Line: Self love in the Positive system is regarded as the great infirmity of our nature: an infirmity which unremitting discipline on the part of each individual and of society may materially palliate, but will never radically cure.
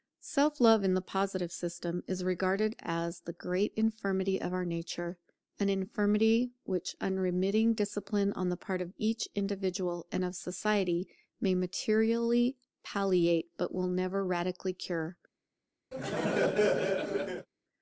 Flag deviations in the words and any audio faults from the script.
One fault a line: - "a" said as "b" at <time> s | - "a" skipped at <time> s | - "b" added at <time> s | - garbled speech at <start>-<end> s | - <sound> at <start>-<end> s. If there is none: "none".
- laugh at 15.9-17.5 s